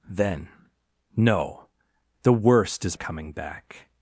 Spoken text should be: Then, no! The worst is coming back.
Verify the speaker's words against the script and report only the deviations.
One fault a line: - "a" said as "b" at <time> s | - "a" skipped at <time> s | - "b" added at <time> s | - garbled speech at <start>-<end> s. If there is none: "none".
none